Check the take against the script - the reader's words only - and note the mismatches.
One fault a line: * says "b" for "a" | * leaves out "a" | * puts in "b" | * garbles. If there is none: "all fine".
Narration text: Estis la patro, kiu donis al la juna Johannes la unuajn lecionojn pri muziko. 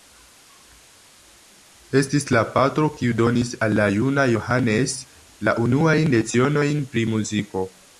all fine